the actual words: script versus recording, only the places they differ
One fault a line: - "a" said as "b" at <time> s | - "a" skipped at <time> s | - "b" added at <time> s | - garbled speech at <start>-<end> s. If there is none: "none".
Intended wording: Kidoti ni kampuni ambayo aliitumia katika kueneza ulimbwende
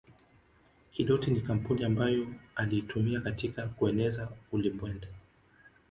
none